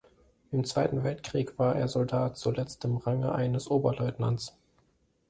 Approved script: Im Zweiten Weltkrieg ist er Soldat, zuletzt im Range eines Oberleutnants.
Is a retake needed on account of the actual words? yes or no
yes